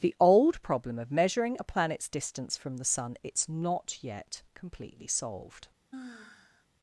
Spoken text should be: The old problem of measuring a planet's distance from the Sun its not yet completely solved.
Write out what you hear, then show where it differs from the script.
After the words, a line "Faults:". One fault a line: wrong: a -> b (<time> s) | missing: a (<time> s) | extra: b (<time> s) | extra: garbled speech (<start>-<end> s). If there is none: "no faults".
The old problem of measuring a planet's distance from the Sun its not yet completely solved.
Faults:
no faults